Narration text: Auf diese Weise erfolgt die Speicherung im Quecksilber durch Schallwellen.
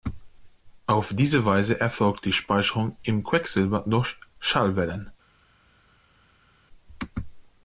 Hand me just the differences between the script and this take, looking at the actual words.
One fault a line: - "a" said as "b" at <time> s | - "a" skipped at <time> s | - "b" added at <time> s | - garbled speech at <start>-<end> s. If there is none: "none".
none